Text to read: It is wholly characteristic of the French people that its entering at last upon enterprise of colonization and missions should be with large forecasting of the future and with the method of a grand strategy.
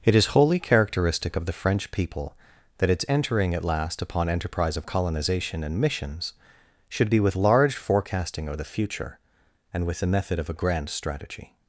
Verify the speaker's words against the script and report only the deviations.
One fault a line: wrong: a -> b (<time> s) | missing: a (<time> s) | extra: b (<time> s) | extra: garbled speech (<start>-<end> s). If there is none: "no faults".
no faults